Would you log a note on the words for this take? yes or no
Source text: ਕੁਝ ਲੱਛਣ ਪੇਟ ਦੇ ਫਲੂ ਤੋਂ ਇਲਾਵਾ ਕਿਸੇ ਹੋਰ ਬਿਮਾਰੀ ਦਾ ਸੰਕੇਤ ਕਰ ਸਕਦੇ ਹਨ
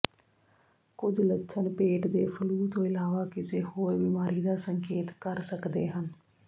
no